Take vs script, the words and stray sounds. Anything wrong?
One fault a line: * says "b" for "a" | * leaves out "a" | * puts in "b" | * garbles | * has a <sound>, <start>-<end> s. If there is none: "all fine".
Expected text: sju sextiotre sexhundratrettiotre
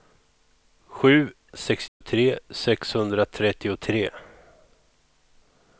* has a dropout, 1.9-2.0 s